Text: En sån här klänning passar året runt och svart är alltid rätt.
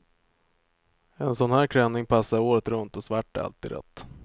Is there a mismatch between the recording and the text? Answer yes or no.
no